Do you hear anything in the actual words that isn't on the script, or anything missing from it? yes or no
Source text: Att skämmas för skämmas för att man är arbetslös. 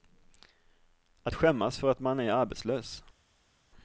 yes